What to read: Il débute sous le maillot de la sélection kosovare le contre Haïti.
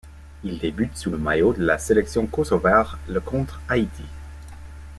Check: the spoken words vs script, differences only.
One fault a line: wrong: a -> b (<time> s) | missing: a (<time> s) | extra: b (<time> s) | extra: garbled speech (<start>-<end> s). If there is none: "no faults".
no faults